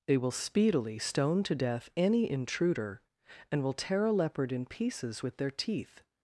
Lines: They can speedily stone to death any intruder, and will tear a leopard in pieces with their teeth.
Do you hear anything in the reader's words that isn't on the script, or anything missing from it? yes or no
yes